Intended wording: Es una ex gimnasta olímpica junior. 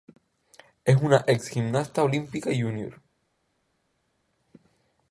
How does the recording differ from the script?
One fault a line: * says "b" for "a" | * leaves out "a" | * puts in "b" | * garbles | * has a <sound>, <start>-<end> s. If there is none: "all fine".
all fine